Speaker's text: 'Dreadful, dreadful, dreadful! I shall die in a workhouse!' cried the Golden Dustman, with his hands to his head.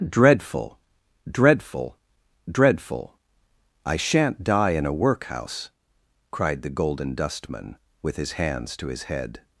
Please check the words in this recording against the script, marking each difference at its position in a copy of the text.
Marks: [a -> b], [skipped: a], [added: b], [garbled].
'Dreadful, dreadful, dreadful! I [shall -> shan't] die in a workhouse!' cried the Golden Dustman, with his hands to his head.